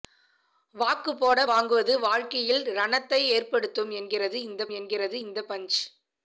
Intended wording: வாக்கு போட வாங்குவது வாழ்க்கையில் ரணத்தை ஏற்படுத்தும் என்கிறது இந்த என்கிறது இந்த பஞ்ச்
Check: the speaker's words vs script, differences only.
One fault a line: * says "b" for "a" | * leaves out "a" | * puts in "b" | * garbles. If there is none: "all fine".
all fine